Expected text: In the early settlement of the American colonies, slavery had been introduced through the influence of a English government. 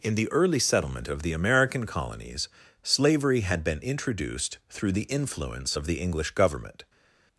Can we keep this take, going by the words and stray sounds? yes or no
no